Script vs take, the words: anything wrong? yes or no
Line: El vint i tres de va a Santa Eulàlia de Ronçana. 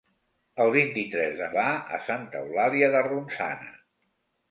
no